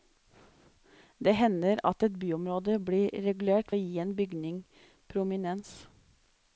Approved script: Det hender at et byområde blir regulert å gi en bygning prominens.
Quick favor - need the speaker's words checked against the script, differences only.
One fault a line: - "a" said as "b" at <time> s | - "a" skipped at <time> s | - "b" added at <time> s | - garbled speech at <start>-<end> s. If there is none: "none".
none